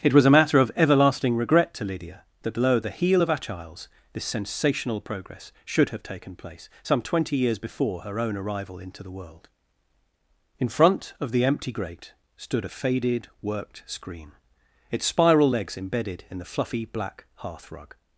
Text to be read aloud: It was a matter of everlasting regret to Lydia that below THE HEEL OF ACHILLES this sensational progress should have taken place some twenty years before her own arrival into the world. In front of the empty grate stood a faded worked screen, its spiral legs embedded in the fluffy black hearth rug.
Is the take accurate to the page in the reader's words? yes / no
yes